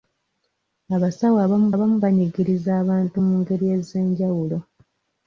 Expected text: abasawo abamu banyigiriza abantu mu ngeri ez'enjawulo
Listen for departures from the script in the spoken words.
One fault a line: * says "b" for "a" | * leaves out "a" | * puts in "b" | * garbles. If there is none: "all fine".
* puts in "abamu"